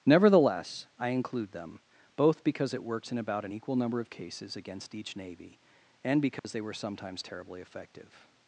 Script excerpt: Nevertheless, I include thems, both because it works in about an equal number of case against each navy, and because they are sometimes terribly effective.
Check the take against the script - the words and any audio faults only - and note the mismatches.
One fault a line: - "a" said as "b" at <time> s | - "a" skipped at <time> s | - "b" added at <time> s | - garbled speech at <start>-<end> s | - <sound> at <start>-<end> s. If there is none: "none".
- "thems" said as "them" at 1.5 s
- "case" said as "cases" at 4.1 s
- dropout at 6.4-6.4 s
- "are" said as "were" at 6.6 s